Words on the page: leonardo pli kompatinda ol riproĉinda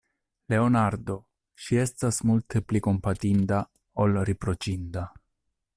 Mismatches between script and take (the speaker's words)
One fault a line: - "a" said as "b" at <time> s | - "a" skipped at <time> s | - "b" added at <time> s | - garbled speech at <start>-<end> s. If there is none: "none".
- "ŝi estas multe" added at 1.6 s